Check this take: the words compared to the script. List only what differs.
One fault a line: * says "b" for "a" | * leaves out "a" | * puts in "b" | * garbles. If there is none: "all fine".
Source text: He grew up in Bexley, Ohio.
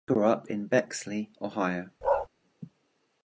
all fine